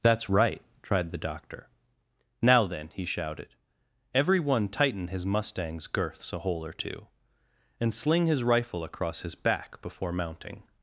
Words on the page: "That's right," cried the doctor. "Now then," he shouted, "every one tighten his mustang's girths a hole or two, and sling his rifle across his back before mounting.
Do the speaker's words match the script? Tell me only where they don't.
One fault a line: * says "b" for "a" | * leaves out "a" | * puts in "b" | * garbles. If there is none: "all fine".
* says "tried" for "cried"